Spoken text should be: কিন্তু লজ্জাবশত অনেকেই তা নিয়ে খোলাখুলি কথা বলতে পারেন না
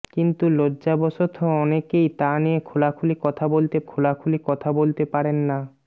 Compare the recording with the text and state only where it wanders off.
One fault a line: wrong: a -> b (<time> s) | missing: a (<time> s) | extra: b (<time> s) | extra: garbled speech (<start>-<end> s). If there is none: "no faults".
extra: খোলাখুলি কথা বলতে (3.8 s)